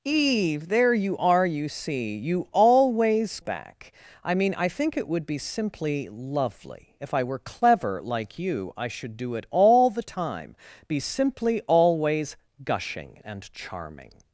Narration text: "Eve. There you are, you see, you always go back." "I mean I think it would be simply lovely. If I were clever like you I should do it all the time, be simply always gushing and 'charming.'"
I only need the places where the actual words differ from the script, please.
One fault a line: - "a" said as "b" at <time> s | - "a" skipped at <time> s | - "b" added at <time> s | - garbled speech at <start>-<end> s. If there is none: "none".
- "go" skipped at 3.4 s